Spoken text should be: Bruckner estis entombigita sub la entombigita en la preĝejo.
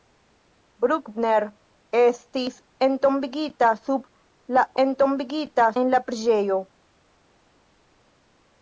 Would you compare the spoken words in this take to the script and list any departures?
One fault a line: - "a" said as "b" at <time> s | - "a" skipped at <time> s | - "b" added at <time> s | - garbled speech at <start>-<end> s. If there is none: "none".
none